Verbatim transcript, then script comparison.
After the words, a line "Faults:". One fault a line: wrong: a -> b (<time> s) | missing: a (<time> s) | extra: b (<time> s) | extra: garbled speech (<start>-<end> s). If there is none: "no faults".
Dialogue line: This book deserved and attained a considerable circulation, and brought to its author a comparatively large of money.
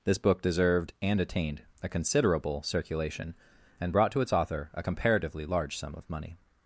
This book deserved and attained a considerable circulation, and brought to its author a comparatively large sum of money.
Faults:
extra: sum (5.8 s)